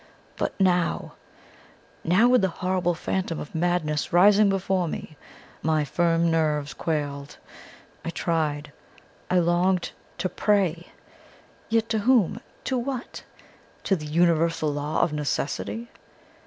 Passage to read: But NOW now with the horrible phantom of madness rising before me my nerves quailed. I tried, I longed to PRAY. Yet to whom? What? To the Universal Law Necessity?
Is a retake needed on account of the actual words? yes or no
yes